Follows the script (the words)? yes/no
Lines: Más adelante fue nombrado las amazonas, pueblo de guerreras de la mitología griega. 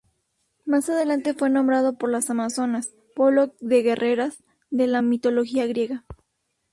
no